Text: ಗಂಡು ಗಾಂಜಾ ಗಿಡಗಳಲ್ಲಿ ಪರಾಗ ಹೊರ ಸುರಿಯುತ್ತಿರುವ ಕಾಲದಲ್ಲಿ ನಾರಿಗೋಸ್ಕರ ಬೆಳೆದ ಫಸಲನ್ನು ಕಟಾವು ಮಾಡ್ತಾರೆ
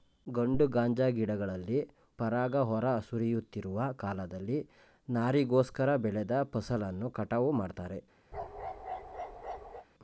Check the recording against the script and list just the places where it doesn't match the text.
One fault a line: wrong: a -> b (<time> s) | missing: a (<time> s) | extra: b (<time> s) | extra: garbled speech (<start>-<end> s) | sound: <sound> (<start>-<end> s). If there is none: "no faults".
sound: bark (8.3-9.9 s)